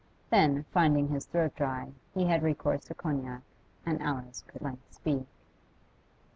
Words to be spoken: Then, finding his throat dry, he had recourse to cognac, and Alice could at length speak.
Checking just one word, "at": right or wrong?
wrong